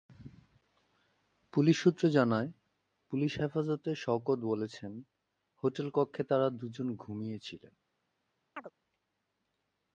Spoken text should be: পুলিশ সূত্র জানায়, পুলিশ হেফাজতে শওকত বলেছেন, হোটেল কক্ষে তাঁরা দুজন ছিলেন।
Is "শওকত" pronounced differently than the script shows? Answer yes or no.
no